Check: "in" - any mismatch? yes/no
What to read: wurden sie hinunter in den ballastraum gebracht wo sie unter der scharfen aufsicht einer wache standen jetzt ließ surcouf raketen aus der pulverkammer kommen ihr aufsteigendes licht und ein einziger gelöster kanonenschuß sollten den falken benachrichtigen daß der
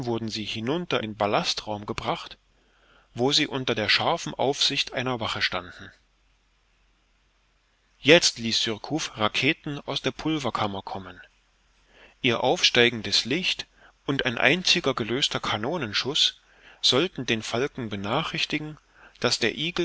yes